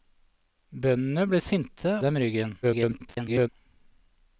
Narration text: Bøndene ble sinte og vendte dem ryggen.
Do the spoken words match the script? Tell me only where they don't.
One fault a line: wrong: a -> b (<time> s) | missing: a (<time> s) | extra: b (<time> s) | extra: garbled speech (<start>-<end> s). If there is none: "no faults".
missing: og vendte (1.9 s)
extra: garbled speech (2.6-3.5 s)